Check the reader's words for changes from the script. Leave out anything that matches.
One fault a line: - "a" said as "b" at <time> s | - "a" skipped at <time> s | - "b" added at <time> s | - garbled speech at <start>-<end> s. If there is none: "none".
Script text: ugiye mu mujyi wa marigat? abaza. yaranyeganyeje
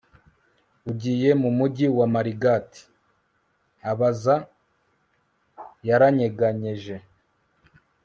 none